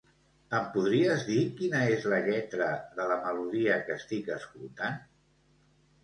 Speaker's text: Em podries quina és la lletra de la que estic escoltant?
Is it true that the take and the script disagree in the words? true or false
true